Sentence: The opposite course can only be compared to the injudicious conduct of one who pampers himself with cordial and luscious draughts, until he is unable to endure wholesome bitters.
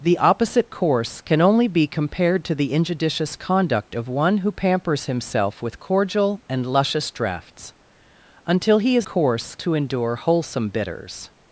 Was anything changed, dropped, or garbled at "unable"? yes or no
yes